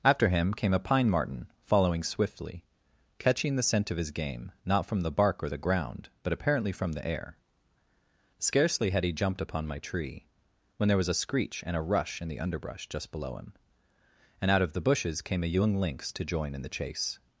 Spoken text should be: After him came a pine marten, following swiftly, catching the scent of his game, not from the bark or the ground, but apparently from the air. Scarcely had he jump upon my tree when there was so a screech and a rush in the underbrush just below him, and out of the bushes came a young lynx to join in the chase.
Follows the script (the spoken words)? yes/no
no